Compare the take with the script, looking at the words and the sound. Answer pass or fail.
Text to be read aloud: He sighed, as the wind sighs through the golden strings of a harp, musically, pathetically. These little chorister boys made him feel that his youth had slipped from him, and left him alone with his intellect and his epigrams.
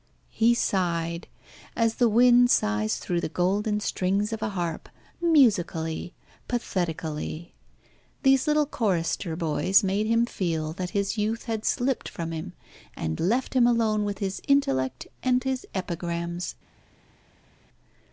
pass